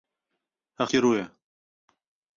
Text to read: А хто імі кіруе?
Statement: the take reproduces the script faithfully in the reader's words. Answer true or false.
false